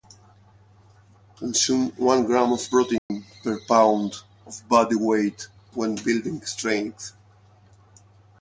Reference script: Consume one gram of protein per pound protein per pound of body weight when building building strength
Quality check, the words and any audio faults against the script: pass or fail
fail